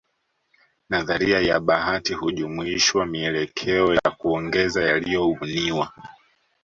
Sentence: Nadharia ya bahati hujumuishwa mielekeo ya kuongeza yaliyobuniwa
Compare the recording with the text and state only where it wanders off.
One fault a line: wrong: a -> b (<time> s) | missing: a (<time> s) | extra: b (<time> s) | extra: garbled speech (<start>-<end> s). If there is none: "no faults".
no faults